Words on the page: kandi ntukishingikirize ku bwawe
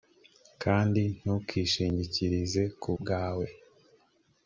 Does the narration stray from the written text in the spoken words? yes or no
no